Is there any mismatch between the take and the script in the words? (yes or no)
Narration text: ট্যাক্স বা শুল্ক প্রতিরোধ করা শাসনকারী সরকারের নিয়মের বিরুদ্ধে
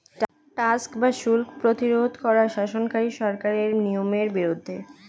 no